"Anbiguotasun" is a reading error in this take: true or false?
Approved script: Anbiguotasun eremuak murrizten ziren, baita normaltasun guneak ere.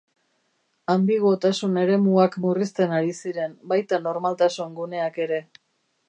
false